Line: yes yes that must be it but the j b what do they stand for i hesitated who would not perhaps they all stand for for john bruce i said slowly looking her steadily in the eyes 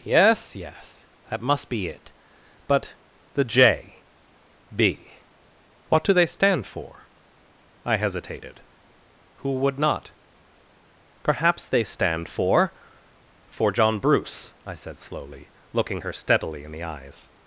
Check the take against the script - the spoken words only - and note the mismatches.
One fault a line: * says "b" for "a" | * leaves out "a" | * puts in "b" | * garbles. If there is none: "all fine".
* leaves out "all"